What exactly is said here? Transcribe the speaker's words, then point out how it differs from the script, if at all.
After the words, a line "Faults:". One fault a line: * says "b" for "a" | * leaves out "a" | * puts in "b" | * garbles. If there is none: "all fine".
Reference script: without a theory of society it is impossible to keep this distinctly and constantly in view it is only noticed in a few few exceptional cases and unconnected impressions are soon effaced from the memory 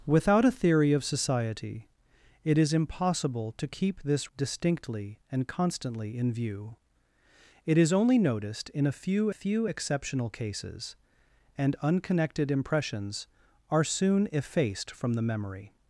without a theory of society it is impossible to keep this distinctly and constantly in view it is only noticed in a few few exceptional cases and unconnected impressions are soon effaced from the memory
Faults:
all fine